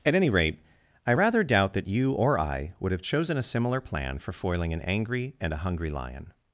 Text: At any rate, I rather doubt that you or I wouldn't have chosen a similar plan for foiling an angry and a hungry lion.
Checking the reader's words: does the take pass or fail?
fail